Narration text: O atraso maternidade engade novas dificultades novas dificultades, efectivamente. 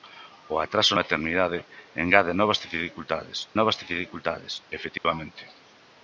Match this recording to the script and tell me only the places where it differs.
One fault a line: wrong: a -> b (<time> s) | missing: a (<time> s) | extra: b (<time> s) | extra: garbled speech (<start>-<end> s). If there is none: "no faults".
no faults